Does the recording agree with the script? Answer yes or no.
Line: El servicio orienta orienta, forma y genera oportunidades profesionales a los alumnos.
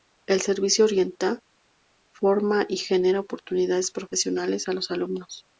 no